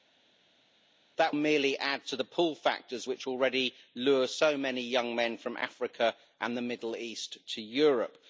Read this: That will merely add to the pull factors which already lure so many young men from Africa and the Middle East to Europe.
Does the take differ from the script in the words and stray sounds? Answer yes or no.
yes